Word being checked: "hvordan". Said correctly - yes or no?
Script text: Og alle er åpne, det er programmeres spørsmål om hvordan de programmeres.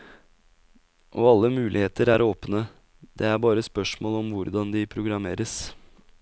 yes